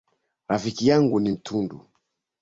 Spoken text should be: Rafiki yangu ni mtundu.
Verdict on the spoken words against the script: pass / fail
pass